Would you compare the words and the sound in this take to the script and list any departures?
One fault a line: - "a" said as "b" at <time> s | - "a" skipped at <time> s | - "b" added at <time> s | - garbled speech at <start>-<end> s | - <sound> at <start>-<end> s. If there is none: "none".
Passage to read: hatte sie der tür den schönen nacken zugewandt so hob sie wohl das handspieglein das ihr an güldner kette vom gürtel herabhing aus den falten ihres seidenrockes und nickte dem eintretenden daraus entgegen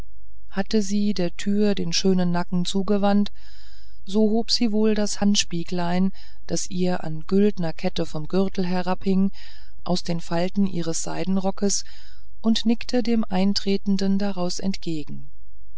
none